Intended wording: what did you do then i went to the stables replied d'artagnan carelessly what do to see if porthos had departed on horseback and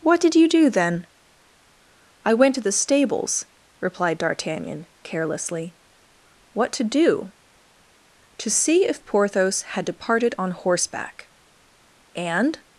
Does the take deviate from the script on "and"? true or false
false